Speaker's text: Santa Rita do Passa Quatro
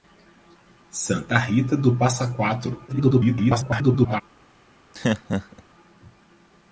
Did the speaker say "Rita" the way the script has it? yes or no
yes